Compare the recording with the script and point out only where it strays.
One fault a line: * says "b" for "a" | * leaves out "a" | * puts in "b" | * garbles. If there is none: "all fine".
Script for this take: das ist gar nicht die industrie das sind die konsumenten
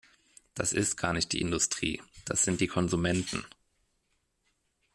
all fine